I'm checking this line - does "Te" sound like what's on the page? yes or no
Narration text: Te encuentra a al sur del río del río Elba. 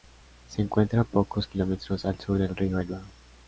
no